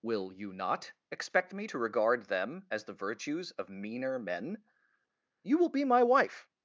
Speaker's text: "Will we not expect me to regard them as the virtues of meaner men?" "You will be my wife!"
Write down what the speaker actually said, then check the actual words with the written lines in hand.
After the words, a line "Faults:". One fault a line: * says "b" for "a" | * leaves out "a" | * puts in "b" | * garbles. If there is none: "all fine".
"Will you not expect me to regard them as the virtues of meaner men?" "You will be my wife!"
Faults:
* says "you" for "we"